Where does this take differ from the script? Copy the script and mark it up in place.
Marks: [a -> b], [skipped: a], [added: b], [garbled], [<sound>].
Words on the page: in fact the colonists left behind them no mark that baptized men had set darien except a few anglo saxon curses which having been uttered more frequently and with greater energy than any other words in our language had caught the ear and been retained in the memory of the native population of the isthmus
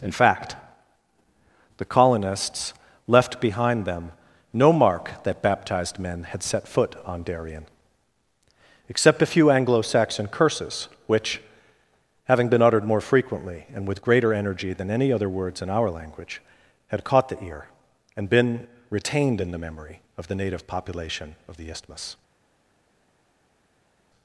in fact the colonists left behind them no mark that baptized men had set [added: foot on] darien except a few anglo saxon curses which having been uttered more frequently and with greater energy than any other words in our language had caught the ear and been retained in the memory of the native population of the isthmus